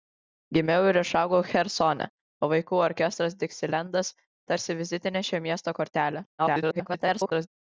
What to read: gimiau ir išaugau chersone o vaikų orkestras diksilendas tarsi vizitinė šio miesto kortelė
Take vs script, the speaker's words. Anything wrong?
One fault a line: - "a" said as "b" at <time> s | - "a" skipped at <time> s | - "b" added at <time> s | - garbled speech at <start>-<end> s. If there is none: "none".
- garbled speech at 6.4-7.5 s